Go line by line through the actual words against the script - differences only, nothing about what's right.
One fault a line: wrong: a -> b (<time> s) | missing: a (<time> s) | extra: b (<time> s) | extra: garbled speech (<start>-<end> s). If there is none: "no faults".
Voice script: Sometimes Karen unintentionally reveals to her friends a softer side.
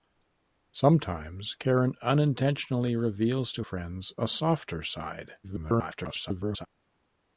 missing: her (3.7 s)
extra: garbled speech (5.4-6.7 s)